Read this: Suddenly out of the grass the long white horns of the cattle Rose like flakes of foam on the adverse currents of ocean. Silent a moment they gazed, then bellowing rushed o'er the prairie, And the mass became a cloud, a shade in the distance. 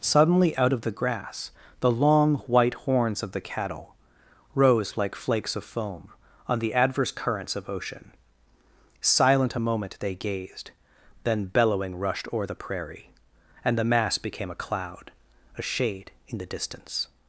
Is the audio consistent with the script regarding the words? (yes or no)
yes